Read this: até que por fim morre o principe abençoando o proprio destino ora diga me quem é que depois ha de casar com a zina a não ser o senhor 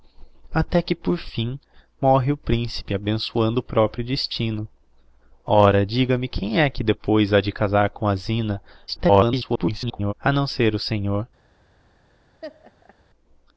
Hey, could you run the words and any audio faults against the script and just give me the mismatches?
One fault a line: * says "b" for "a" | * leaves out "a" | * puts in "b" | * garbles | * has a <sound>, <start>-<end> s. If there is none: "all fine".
* garbles
* has a laugh, 12.4-13.0 s